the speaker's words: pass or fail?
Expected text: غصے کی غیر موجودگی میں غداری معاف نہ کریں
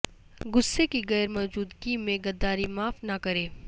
pass